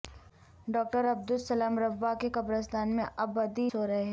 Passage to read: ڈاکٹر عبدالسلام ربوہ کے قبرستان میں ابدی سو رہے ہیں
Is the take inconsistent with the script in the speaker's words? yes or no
no